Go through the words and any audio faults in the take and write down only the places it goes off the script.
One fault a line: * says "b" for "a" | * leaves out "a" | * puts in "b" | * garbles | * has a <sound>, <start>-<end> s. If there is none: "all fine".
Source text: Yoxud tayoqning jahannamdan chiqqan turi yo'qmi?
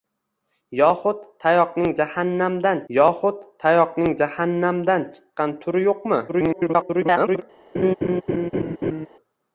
* puts in "yoxud tayoqning jahannamdan"
* garbles
* has a laugh, 7.7-9.1 s